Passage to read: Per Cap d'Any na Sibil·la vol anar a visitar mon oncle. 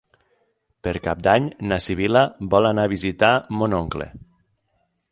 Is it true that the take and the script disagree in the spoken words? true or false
false